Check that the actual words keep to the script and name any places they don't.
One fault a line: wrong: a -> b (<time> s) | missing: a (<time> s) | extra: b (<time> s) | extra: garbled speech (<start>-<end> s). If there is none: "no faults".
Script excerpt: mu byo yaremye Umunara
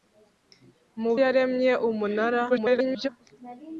missing: byo (1.1 s)
extra: garbled speech (2.5-3.1 s)